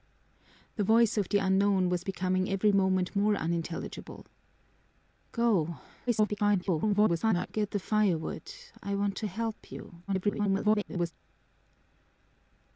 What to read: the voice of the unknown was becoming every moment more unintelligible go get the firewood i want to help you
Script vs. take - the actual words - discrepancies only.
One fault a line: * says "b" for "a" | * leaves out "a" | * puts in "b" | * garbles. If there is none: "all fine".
* garbles
* garbles